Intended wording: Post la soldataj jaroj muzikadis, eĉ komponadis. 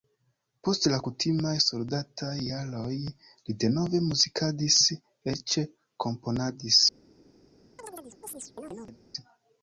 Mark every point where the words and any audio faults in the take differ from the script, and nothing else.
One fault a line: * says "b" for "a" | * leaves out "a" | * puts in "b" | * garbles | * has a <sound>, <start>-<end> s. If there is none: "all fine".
* puts in "kutimaj"
* puts in "li denove"
* has a chirp, 7.8-9.0 s